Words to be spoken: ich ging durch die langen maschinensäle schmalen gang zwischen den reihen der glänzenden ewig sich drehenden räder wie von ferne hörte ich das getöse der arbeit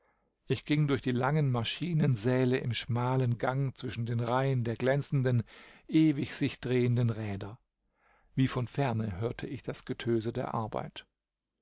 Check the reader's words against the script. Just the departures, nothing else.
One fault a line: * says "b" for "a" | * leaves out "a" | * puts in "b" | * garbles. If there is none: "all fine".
* puts in "im"